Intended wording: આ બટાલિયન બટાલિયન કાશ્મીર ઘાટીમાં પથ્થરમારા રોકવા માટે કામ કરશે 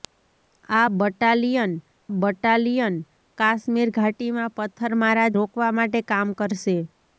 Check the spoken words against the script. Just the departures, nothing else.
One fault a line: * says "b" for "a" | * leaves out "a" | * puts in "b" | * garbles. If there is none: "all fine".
all fine